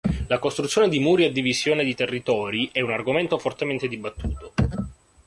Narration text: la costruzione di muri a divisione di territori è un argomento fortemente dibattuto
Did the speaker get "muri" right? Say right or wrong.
right